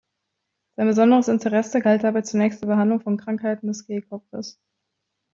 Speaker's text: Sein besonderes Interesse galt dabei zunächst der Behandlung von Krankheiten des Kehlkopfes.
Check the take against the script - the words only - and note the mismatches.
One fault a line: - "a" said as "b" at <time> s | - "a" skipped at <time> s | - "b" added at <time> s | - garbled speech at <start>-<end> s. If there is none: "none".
none